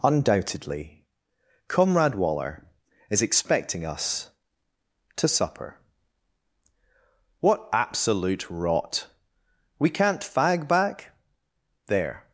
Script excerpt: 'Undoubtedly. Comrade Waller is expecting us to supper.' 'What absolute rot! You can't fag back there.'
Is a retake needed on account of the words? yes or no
yes